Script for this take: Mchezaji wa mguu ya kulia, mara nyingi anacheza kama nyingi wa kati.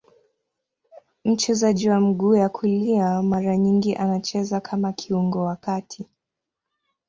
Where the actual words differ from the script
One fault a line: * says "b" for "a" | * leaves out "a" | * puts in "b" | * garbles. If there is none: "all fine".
* says "kiungo" for "nyingi"